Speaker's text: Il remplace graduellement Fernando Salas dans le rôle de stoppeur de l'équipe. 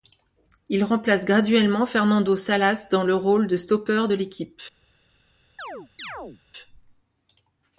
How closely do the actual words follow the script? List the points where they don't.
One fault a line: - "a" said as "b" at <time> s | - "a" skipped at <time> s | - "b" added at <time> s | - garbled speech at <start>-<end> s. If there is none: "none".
none